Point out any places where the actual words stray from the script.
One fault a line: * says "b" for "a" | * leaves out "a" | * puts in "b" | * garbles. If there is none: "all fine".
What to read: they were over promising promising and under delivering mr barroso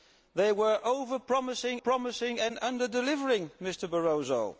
all fine